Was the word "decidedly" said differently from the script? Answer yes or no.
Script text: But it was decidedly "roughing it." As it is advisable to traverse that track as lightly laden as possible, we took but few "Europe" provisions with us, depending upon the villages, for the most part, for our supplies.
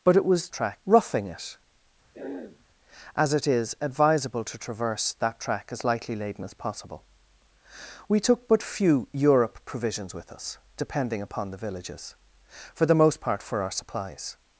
yes